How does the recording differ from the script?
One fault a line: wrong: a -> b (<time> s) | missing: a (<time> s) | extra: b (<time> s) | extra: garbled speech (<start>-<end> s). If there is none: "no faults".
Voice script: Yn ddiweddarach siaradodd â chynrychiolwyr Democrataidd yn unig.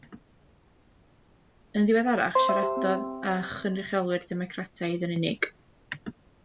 no faults